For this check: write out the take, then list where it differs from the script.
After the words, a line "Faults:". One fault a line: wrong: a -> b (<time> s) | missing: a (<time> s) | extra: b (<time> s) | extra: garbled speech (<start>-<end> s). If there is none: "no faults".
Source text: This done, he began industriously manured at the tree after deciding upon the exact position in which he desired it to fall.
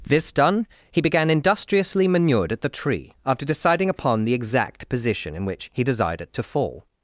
This done, he began industriously manured at the tree after deciding upon the exact position in which he desired it to fall.
Faults:
no faults